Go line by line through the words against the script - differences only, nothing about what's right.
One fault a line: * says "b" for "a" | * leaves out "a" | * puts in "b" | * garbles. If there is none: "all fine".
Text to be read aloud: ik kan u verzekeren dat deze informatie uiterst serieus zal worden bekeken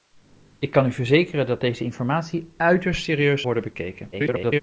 * leaves out "zal"
* garbles